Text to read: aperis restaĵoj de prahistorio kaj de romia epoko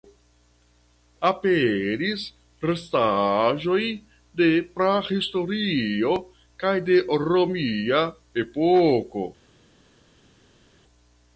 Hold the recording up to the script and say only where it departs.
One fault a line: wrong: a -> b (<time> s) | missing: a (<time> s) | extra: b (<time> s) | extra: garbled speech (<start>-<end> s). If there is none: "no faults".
no faults